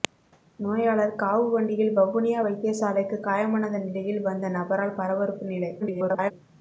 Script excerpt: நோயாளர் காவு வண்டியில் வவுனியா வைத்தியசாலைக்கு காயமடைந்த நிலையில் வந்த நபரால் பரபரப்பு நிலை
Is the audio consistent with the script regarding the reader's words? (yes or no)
no